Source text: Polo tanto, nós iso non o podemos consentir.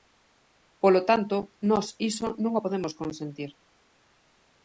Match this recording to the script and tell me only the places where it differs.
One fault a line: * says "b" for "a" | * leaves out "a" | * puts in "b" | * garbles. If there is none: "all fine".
all fine